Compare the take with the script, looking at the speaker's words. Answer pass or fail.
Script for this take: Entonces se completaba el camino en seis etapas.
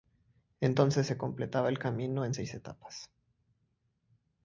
pass